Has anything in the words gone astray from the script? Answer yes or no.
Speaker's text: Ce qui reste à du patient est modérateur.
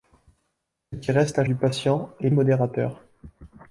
no